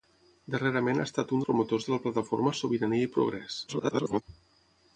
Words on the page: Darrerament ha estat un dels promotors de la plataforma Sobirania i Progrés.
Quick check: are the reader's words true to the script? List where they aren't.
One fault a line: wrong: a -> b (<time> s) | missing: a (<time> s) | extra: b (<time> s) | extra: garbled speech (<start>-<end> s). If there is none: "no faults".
missing: dels (1.4 s)
extra: garbled speech (3.7-4.2 s)